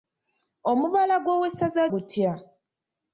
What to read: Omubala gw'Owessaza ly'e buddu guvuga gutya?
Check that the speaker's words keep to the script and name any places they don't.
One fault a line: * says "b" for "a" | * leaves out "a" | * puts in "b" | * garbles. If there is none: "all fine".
* leaves out "ly'e buddu guvuga"